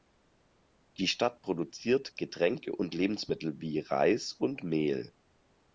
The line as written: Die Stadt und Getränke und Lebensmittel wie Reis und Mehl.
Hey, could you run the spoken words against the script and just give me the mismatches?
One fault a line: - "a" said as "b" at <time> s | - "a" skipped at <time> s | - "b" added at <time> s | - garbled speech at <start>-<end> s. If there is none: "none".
- "und" said as "produziert" at 1.4 s